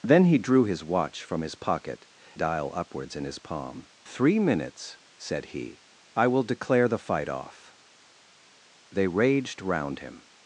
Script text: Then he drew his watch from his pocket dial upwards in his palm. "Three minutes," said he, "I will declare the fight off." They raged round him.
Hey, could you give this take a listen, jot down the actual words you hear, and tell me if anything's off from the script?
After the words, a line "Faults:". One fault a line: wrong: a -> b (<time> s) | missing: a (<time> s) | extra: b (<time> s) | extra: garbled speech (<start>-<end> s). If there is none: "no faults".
Then he drew his watch from his pocket dial upwards in his palm. "Three minutes," said he, "I will declare the fight off." They raged round him.
Faults:
no faults